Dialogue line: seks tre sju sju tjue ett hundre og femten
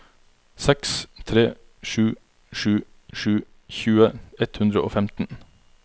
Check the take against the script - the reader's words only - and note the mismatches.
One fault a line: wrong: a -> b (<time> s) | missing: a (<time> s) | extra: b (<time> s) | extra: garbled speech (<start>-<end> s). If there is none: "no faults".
extra: sju (3.1 s)